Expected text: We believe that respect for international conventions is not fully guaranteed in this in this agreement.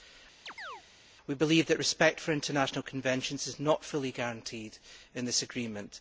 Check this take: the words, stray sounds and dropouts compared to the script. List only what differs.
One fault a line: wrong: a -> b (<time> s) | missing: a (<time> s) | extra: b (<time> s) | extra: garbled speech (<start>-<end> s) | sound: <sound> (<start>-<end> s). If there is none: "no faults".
sound: chirp (0.5-0.8 s)
missing: in this (5.4 s)